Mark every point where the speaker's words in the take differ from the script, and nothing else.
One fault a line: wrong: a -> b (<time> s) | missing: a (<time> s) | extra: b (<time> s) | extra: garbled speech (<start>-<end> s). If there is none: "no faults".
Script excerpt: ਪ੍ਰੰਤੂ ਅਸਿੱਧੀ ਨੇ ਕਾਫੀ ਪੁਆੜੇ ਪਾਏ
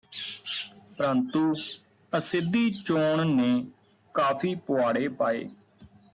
extra: ਚੋਣ (2.9 s)